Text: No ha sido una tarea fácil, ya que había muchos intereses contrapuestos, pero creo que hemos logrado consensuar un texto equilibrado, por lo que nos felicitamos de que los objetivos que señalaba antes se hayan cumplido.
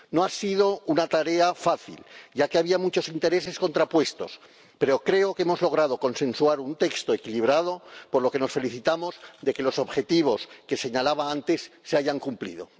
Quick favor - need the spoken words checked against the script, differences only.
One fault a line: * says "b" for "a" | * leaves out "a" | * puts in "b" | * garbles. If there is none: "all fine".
all fine